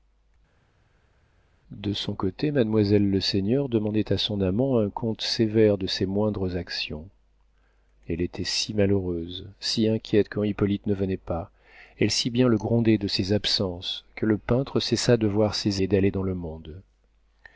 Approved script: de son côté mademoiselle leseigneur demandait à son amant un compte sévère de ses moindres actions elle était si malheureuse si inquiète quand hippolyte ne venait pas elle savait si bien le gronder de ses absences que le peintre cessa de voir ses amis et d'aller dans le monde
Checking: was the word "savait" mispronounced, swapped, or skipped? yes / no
yes